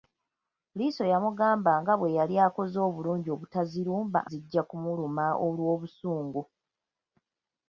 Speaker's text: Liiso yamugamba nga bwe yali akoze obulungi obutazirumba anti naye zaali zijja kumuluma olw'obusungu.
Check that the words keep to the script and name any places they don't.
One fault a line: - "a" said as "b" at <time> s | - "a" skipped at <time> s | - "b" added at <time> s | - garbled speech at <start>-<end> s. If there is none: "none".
- "anti naye zaali" skipped at 4.2 s